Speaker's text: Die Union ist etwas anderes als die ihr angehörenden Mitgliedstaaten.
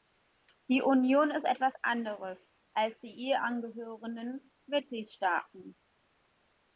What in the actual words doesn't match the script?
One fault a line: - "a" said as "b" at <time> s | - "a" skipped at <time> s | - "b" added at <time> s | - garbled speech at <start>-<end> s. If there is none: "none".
none